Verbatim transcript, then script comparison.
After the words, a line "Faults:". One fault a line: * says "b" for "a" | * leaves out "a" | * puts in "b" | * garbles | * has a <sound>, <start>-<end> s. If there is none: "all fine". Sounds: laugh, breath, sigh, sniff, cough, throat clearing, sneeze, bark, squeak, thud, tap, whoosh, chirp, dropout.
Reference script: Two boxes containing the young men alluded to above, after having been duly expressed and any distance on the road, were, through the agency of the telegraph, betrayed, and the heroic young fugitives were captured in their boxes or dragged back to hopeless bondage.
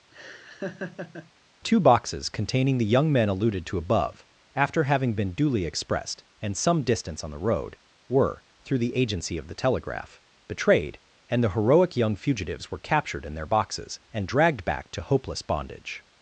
Two boxes containing the young men alluded to above, after having been duly expressed and some distance on the road, were, through the agency of the telegraph, betrayed, and the heroic young fugitives were captured in their boxes and dragged back to hopeless bondage.
Faults:
* has a laugh, 0.1-1.3 s
* says "some" for "any"
* says "and" for "or"